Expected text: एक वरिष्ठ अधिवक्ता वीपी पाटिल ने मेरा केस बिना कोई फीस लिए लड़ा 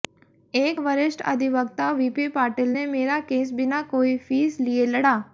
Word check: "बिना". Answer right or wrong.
right